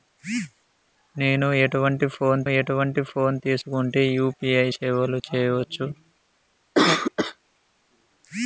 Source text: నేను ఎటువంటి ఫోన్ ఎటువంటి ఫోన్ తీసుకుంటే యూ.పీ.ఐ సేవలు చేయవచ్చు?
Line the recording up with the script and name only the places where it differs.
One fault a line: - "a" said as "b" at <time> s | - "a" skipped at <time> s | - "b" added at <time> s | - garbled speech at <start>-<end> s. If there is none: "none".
none